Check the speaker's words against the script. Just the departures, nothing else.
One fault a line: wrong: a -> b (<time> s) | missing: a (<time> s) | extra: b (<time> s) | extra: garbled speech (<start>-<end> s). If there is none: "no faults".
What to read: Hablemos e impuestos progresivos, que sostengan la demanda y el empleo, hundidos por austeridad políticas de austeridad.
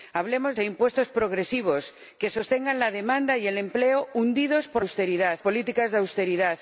no faults